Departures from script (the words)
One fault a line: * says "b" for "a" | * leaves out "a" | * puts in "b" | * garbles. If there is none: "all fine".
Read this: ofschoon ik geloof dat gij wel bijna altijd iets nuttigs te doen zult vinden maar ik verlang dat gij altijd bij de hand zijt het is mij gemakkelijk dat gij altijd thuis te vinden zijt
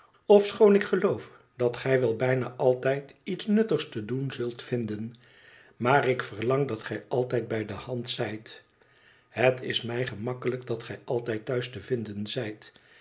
all fine